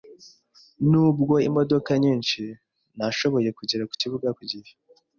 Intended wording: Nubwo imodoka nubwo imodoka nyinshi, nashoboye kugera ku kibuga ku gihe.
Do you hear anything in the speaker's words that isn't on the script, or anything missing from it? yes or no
yes